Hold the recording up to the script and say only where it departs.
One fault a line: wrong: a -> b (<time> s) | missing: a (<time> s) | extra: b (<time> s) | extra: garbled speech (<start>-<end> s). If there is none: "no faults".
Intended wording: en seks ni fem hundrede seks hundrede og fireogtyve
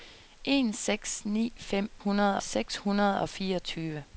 no faults